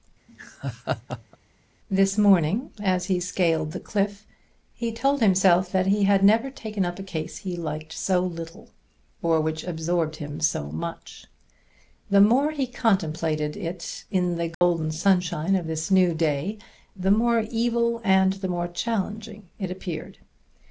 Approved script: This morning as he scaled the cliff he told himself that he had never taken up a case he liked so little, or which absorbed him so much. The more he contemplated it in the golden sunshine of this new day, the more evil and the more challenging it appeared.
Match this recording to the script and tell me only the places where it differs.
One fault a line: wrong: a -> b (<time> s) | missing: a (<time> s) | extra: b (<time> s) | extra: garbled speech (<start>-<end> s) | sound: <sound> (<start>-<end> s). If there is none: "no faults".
sound: laugh (0.3-1.4 s)
sound: dropout (14.5-14.6 s)